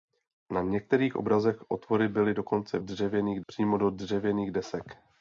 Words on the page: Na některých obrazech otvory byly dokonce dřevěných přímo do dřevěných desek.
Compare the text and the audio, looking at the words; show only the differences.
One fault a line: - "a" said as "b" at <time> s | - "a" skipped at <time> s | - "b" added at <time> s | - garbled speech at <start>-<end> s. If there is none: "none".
none